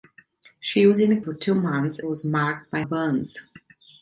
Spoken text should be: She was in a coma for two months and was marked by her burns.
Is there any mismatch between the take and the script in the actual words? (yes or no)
yes